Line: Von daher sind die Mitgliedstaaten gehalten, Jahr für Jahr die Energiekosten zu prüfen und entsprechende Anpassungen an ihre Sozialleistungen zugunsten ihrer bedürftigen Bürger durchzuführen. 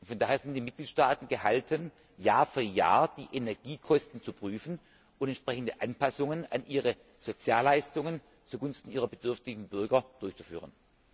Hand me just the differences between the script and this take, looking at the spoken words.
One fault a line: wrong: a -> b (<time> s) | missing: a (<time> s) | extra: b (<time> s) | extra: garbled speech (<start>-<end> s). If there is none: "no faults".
no faults